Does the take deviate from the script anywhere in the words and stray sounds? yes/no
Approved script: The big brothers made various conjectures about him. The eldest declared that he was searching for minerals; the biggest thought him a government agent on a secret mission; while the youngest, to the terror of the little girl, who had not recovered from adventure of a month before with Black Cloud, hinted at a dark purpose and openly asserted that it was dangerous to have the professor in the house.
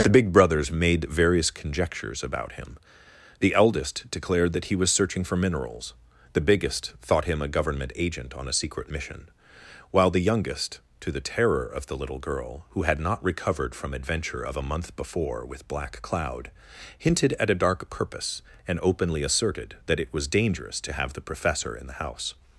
no